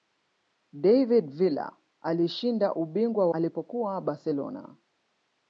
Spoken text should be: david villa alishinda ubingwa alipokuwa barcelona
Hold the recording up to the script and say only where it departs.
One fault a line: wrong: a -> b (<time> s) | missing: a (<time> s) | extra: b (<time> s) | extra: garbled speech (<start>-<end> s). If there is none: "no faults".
no faults